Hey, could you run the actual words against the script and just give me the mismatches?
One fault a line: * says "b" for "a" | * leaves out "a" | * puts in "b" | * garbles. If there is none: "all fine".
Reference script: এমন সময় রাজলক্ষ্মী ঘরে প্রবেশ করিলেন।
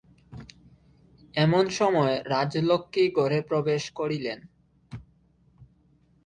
all fine